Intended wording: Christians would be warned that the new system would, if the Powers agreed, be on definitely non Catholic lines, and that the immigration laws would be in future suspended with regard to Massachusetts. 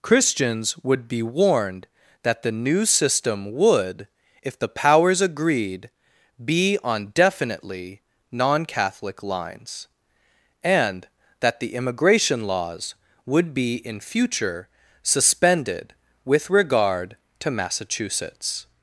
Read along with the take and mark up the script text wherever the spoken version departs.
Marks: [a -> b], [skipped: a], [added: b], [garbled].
Christians would be warned that the new system would, if the Powers agreed, be on definitely non Catholic lines, and that the immigration laws would be in future suspended with regard to Massachusetts.